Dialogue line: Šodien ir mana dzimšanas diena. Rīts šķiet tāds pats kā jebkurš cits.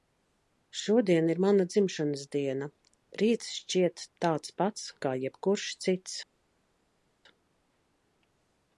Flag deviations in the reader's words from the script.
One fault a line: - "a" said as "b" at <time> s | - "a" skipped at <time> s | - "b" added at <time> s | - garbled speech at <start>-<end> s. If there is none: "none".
none